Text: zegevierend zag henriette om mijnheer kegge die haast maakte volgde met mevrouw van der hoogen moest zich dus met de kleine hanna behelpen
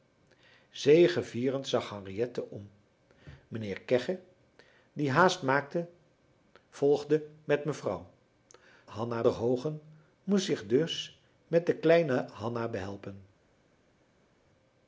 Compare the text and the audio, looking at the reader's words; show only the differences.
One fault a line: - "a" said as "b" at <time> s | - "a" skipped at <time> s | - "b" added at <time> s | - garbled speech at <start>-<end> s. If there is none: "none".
- "van" said as "hanna" at 8.9 s